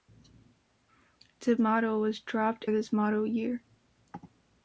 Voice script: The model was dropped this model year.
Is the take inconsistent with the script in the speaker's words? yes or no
no